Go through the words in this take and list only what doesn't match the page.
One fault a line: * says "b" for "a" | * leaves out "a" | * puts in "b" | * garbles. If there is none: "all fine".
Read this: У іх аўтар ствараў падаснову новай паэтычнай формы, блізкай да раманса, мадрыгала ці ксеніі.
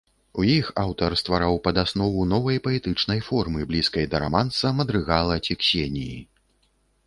all fine